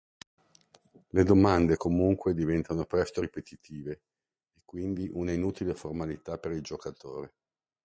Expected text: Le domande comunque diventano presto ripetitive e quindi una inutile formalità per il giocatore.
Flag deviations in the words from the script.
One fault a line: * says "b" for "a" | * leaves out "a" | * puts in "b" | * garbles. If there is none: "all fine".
all fine